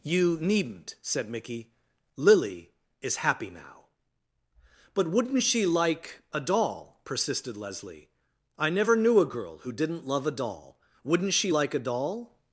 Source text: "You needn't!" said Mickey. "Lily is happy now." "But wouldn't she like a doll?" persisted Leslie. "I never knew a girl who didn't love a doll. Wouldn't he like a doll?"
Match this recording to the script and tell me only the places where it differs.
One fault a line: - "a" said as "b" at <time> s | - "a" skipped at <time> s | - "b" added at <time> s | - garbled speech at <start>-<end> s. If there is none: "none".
- "he" said as "she" at 11.3 s